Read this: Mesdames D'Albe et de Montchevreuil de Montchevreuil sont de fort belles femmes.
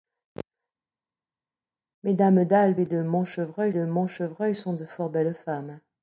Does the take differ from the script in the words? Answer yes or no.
no